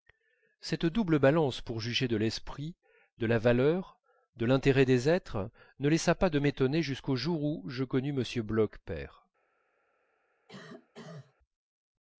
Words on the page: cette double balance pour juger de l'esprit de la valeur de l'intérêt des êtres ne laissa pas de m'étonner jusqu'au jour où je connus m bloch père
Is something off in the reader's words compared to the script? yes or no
no